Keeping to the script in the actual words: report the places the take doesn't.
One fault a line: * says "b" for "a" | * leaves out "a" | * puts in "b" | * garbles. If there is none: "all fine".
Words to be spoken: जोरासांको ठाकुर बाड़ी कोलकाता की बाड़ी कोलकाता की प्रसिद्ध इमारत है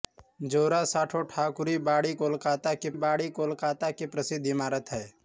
all fine